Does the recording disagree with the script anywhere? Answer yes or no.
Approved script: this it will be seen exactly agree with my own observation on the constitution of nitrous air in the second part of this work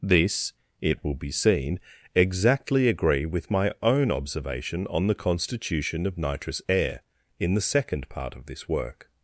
no